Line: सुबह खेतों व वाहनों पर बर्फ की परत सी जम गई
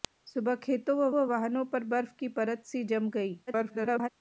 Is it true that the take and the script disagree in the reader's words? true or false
true